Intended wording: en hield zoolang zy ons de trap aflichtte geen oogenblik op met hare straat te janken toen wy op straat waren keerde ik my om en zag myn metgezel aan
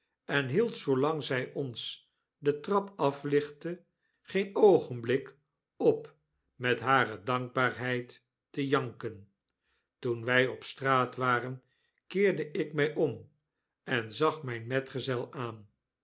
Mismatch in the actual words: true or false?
true